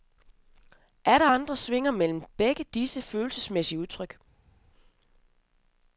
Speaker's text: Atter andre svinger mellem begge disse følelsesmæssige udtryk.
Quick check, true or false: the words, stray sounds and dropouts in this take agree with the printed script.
true